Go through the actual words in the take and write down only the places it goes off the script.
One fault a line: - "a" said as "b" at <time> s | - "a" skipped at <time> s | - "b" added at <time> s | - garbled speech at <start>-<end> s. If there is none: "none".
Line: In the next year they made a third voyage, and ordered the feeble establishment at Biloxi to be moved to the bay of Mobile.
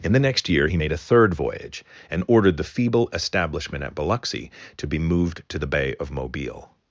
- "they" said as "he" at 0.7 s